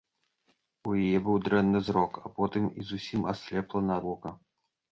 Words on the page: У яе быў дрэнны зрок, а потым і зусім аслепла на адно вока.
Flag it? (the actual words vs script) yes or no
yes